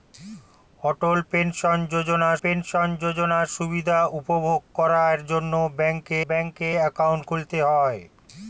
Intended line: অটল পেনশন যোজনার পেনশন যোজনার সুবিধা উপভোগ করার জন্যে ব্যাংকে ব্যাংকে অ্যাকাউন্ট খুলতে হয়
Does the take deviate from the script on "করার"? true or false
false